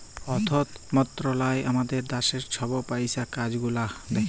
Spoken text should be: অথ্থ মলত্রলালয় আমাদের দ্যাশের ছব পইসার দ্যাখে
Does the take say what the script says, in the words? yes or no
no